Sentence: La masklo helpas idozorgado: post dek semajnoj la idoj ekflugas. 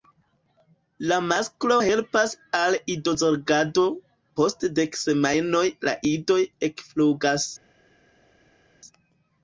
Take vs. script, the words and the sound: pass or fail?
fail